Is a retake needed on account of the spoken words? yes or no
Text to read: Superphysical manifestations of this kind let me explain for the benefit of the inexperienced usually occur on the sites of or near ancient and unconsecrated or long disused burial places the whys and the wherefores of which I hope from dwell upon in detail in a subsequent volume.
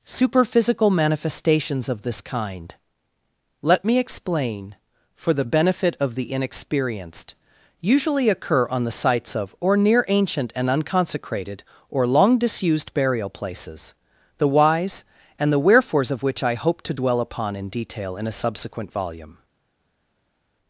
yes